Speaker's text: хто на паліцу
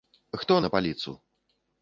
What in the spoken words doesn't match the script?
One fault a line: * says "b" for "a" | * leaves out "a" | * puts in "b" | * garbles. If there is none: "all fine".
all fine